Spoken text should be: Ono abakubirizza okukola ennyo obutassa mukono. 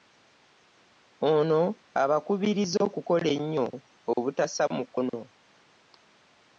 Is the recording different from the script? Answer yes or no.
no